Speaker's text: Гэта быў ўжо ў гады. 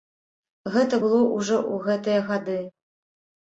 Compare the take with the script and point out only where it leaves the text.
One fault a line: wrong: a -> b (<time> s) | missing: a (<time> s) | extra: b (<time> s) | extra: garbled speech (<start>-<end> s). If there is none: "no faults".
wrong: быў -> было (1.1 s)
extra: гэтыя (1.9 s)